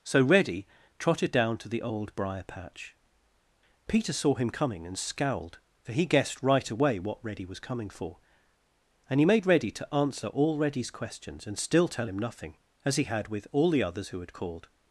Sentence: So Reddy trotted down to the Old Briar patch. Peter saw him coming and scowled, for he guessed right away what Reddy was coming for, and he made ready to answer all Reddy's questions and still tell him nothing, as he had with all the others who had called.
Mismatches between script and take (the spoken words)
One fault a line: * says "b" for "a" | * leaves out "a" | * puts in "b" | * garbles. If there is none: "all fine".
all fine